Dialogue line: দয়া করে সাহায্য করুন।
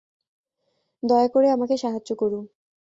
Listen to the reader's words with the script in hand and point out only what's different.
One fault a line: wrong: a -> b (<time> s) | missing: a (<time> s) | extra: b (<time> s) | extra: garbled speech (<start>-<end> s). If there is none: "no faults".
extra: আমাকে (1.5 s)